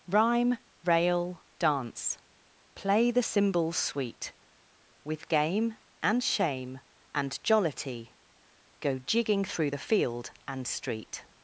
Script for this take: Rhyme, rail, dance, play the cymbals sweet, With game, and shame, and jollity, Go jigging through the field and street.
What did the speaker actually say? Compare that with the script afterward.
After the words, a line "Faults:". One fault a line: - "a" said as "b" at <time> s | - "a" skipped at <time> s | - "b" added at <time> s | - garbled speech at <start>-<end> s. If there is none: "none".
Rhyme, rail, dance, play the cymbals sweet, With game, and shame, and jollity, Go jigging through the field and street.
Faults:
none